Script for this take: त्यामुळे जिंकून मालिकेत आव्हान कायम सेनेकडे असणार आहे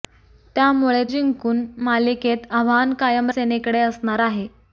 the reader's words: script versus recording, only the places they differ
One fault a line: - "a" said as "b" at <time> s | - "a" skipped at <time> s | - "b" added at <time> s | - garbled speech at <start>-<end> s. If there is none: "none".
none